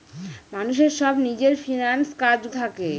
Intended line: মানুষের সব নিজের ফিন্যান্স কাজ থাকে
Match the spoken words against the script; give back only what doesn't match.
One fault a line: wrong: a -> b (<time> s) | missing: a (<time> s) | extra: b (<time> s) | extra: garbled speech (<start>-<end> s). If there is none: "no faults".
no faults